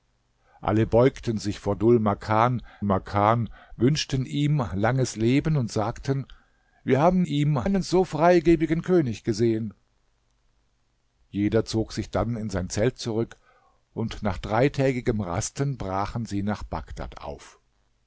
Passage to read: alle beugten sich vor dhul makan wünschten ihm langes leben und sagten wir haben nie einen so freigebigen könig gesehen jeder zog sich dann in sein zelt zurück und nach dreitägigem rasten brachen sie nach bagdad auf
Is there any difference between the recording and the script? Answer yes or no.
yes